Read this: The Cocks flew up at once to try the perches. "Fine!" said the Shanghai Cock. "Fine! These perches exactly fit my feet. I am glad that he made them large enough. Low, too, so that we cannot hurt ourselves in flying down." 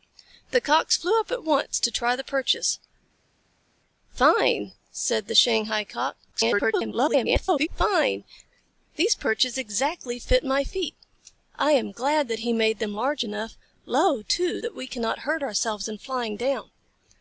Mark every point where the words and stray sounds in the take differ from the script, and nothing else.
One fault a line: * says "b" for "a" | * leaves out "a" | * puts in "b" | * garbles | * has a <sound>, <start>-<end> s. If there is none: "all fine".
* garbles
* leaves out "so"